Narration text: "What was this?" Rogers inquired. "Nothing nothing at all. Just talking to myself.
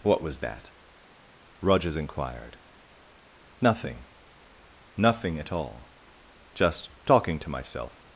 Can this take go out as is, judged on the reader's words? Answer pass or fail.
fail